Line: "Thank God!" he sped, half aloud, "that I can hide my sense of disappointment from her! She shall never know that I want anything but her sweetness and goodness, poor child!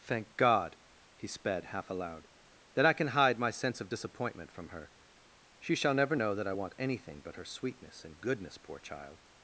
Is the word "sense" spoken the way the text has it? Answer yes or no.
yes